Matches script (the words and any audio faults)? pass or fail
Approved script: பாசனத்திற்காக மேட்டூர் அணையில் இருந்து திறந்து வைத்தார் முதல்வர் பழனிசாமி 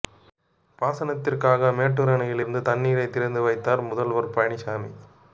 fail